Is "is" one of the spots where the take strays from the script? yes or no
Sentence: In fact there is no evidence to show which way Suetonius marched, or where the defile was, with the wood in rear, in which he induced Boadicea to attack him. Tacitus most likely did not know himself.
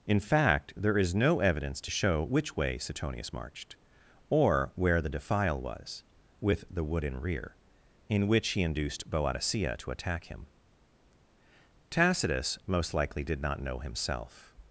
no